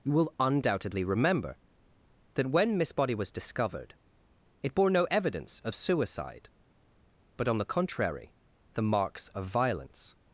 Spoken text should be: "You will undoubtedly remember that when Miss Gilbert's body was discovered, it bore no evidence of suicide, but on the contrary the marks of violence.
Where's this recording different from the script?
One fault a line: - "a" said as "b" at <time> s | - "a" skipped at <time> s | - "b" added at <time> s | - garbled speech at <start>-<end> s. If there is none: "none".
- "Gilbert's" skipped at 2.9 s